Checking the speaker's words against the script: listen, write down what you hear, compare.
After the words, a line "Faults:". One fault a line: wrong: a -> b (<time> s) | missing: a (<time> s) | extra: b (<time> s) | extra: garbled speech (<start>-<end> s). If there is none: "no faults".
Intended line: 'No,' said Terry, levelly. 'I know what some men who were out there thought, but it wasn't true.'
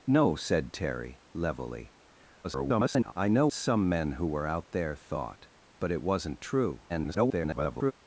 'No,' said Terry, levelly. [garbled] 'I know some men who were out there thought, but it wasn't true.' [garbled]
Faults:
extra: garbled speech (2.4-3.1 s)
missing: what (3.5 s)
extra: garbled speech (6.9-7.9 s)